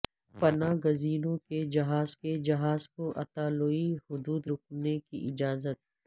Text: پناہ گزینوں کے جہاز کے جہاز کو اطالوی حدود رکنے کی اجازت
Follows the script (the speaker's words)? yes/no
yes